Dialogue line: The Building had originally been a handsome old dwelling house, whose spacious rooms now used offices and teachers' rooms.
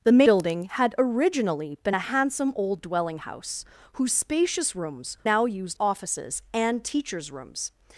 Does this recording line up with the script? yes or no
yes